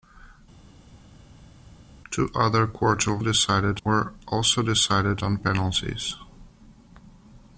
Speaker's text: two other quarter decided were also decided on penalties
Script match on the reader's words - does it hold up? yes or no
yes